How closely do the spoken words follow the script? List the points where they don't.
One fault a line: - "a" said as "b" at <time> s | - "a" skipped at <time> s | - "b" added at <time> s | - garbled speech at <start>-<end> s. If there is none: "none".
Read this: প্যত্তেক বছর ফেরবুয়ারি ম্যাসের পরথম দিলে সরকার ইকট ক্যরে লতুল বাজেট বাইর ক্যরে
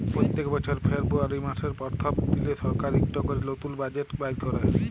none